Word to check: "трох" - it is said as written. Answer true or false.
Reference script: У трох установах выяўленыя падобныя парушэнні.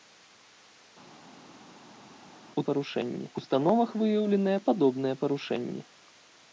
false